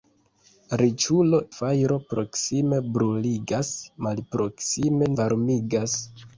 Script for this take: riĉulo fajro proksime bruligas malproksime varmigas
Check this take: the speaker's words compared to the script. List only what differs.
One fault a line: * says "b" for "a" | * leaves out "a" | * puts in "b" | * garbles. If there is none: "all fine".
all fine